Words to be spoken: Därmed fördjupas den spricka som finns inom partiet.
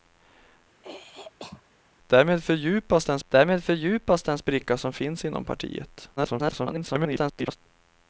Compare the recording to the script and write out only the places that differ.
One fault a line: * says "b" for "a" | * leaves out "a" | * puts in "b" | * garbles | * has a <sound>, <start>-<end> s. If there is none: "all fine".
* has a throat clearing, 0.8-1.6 s
* puts in "därmed fördjupas den"
* garbles